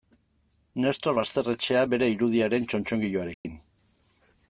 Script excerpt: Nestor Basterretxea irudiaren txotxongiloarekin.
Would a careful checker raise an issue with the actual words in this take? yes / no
yes